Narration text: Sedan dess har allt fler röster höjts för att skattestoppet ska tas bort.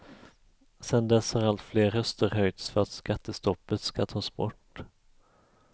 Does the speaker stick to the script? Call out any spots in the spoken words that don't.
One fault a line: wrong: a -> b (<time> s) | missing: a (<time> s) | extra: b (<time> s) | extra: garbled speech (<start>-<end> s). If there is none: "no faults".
no faults